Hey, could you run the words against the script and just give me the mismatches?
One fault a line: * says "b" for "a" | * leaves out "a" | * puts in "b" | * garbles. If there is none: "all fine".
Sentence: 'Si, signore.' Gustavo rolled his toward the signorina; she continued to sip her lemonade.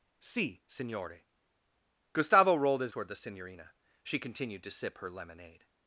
all fine